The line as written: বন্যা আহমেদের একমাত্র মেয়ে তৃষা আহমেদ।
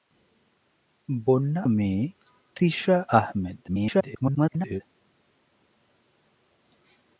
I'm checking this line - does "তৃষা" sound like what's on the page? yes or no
yes